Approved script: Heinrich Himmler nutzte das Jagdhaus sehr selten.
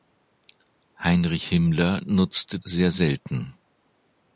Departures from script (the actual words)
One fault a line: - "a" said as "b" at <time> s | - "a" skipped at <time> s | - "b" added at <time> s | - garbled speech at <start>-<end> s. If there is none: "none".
- "das Jagdhaus" skipped at 2.6 s